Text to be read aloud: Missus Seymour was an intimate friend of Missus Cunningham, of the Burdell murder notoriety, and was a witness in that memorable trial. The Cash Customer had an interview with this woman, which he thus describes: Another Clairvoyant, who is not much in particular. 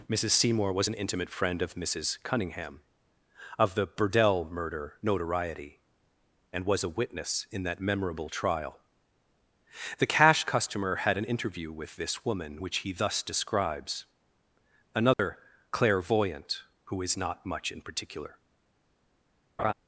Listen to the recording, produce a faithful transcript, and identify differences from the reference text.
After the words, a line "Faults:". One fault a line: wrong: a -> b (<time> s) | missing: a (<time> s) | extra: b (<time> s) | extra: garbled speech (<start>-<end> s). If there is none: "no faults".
Missus Seymour was an intimate friend of Missus Cunningham, of the Burdell murder notoriety, and was a witness in that memorable trial. The Cash Customer had an interview with this woman, which he thus describes: Another Clairvoyant, who is not much in particular.
Faults:
no faults